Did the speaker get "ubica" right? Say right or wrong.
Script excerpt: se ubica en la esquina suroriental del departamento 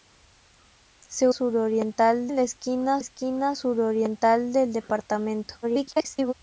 wrong